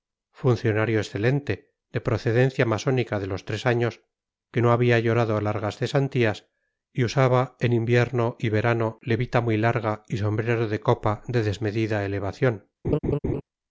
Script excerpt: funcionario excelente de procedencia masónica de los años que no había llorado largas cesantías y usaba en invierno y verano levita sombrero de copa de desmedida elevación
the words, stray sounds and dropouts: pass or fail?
fail